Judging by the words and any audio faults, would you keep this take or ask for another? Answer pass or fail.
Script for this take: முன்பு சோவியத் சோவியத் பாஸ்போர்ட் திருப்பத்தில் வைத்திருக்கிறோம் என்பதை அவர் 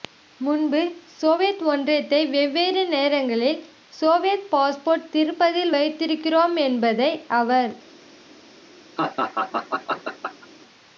fail